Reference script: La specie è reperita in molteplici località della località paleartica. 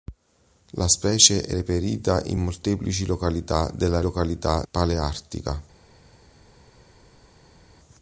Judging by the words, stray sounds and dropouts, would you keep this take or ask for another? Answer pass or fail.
pass